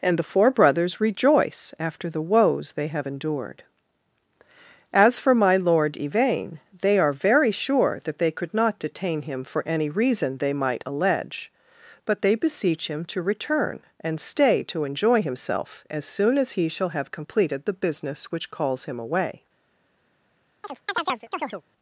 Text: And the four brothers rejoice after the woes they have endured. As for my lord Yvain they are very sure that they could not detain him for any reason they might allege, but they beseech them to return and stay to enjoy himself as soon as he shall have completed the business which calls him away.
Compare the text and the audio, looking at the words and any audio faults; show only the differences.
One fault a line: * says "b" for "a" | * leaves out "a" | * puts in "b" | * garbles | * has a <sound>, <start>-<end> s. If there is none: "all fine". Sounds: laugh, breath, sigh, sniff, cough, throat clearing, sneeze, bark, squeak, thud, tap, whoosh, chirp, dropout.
* says "him" for "them"
* has a chirp, 20.6-21.6 s